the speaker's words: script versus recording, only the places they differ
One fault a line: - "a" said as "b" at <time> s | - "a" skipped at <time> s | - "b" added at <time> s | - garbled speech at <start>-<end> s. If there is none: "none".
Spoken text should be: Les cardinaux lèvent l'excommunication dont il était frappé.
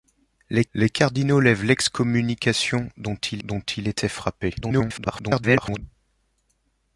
- "les" added at 0.7 s
- "dont il" added at 3.4 s
- garbled speech at 4.6-5.8 s